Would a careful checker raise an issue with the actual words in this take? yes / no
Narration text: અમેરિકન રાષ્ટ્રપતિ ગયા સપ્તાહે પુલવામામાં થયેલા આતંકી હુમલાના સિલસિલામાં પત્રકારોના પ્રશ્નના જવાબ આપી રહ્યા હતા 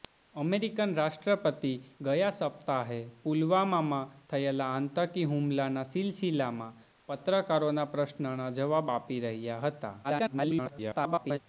yes